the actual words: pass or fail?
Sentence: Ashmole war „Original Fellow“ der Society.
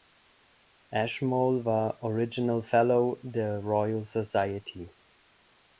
fail